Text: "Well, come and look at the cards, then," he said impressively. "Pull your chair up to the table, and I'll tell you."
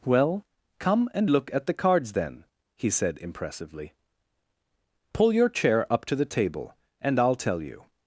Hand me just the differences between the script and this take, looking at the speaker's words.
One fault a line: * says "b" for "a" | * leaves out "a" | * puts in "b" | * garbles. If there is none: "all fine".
all fine